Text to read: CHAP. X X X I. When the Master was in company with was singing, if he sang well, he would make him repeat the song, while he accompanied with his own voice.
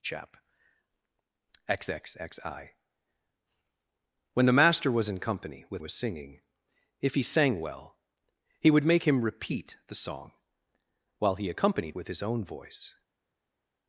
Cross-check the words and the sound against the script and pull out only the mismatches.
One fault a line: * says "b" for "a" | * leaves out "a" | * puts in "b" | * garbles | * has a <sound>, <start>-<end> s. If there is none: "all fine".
all fine